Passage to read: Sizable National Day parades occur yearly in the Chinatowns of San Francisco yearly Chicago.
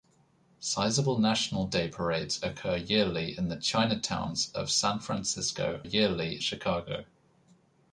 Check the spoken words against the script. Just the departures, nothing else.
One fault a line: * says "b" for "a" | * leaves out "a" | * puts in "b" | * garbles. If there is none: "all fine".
all fine